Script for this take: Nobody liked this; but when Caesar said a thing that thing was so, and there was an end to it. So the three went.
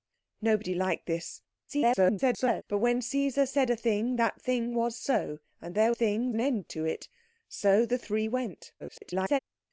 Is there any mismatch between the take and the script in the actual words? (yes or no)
yes